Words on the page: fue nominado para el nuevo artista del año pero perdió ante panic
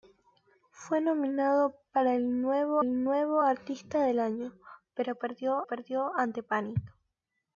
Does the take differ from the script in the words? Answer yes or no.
yes